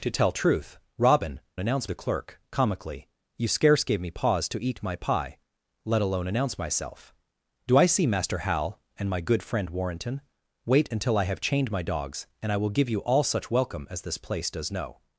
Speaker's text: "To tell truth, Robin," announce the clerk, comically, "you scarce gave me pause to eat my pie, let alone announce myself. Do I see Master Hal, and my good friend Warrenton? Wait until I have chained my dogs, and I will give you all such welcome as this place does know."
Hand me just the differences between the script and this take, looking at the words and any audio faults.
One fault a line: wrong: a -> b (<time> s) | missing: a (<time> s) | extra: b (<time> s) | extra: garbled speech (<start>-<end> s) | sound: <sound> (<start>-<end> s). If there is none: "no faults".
no faults